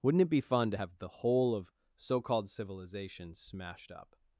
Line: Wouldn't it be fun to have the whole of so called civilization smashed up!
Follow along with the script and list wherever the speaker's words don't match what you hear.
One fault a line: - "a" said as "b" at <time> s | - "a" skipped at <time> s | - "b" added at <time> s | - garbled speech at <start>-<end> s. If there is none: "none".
none